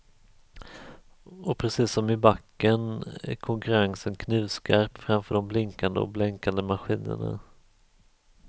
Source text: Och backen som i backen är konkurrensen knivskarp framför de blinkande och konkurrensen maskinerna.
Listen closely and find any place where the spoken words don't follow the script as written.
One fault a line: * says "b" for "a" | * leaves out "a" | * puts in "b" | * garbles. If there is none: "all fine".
* says "precis" for "backen"
* says "blänkande" for "konkurrensen"